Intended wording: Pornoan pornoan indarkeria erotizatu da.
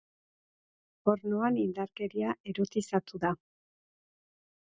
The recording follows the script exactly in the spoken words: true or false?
false